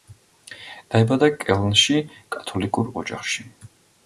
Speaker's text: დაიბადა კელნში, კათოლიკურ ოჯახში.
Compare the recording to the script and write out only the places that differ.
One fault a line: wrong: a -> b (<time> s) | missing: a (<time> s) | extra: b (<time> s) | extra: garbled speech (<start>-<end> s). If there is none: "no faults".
no faults